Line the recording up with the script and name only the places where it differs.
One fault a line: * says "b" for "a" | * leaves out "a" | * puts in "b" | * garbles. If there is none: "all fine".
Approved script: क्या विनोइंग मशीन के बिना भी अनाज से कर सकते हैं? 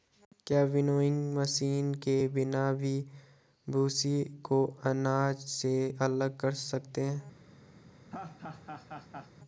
* puts in "भूसी को"
* puts in "अलग"